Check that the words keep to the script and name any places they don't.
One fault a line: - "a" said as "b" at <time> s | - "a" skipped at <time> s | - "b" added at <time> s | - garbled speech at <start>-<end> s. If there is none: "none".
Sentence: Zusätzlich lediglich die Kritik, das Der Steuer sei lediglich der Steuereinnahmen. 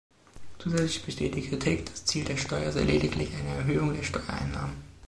- "lediglich" said as "besteht" at 1.0 s
- "Ziel" added at 2.0 s
- "eine Erhöhung" added at 3.4 s